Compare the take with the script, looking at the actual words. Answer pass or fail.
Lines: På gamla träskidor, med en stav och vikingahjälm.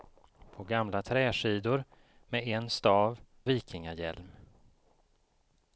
fail